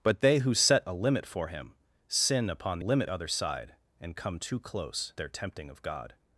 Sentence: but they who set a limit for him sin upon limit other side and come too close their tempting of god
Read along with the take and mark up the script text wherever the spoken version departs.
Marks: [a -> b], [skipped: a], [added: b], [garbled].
but they who set a limit for him sin upon limit other side and come too close their tempting of god